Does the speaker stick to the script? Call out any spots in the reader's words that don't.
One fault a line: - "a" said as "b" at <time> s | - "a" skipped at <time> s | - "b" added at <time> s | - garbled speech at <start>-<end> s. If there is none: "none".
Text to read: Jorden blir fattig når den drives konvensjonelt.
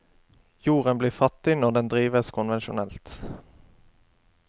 none